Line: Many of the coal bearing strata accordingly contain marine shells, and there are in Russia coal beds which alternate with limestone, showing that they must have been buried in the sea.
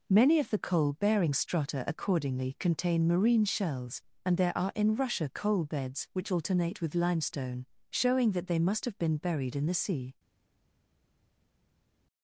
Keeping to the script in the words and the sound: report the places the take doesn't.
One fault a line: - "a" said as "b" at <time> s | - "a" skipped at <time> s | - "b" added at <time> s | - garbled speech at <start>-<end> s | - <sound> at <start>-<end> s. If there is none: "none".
none